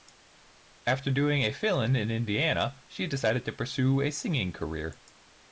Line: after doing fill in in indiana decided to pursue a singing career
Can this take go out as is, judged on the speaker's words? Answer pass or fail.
fail